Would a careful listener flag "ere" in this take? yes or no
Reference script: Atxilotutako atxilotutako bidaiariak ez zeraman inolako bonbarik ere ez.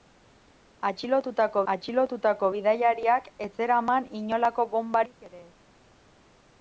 no